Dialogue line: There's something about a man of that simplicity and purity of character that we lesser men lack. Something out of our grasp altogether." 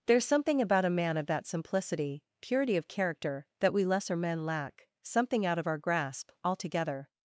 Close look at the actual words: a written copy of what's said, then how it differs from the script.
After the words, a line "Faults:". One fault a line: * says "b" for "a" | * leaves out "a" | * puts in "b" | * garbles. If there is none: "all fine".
There's something about a man of that simplicity purity of character that we lesser men lack. Something out of our grasp altogether."
Faults:
* leaves out "and"